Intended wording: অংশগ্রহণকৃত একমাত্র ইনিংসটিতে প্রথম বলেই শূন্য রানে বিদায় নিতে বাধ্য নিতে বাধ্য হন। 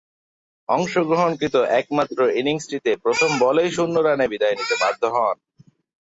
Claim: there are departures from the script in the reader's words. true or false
true